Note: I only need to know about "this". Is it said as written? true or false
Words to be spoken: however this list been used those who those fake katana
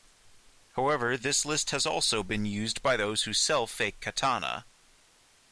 true